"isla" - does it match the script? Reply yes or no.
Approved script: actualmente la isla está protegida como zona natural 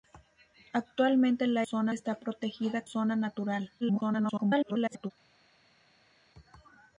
no